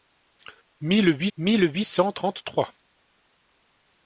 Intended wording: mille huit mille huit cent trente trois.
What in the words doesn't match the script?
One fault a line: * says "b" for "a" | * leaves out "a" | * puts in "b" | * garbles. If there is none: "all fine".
all fine